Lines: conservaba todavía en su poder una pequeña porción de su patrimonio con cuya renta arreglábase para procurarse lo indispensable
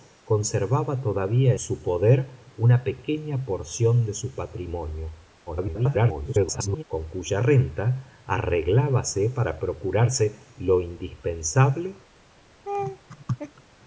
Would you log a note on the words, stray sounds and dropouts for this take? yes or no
yes